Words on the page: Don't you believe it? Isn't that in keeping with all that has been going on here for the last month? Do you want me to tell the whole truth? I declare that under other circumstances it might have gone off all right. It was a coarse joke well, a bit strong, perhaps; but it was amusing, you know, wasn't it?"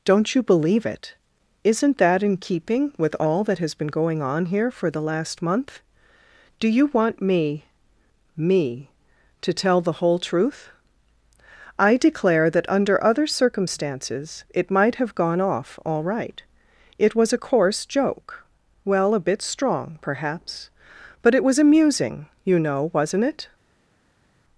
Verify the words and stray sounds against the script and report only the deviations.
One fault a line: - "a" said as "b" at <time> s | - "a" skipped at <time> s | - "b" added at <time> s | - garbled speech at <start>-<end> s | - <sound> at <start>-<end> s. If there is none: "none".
- "me" added at 8.3 s